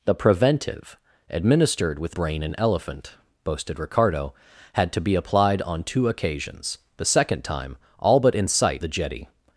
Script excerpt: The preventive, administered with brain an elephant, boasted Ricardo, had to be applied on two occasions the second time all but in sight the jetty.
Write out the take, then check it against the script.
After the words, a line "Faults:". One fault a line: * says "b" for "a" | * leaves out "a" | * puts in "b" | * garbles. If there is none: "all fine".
The preventive, administered with brain an elephant, boasted Ricardo, had to be applied on two occasions the second time all but in sight the jetty.
Faults:
all fine